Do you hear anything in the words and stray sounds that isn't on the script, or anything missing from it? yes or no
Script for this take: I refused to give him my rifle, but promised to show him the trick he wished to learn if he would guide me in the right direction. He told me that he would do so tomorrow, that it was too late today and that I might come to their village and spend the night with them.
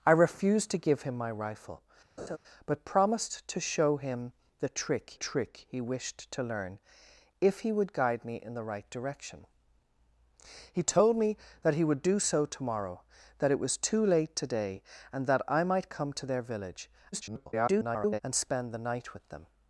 yes